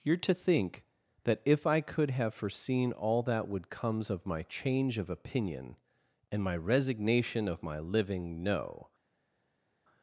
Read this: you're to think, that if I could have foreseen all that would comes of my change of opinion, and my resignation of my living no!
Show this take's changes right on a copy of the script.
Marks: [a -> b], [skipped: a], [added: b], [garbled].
you're to think, that if I could have foreseen all that would comes of my change of opinion, and my resignation of my living no!